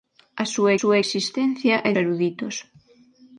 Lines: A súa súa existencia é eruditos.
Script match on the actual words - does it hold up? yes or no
yes